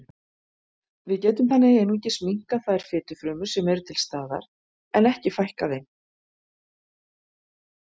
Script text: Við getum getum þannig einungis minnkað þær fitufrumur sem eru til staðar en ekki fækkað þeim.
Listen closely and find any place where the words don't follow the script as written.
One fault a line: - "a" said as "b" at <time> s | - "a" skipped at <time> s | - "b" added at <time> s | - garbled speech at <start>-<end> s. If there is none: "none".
- "getum" skipped at 1.5 s